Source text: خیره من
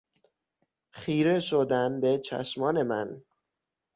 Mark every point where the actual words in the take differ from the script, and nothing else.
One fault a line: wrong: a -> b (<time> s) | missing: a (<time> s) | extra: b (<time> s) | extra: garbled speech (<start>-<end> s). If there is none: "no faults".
extra: شدن به چشمان (1.4 s)